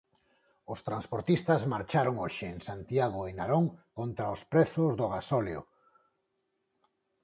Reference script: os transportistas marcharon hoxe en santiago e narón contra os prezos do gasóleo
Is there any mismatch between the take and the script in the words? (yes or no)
no